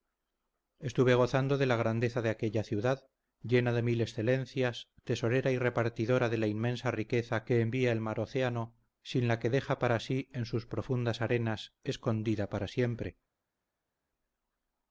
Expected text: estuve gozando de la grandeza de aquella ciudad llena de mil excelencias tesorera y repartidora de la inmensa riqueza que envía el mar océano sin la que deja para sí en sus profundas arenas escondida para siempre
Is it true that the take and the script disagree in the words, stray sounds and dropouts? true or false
false